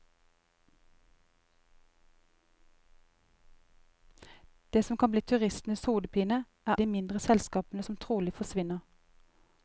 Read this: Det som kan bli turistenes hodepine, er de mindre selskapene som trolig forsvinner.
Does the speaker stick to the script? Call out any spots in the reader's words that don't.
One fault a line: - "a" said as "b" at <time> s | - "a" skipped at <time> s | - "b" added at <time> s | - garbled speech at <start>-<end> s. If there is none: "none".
none